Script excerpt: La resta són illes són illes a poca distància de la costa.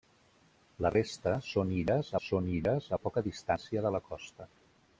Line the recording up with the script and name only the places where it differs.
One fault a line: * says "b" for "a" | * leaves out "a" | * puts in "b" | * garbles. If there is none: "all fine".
all fine